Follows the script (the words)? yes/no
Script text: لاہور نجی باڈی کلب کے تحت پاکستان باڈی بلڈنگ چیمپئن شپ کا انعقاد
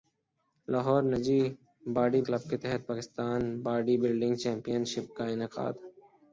yes